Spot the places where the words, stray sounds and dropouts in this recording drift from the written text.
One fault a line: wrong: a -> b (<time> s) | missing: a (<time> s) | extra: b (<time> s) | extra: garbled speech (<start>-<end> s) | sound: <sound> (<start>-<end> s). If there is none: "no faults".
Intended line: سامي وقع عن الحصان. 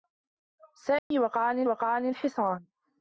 sound: dropout (1.0-1.1 s)
extra: وقع عن (1.7 s)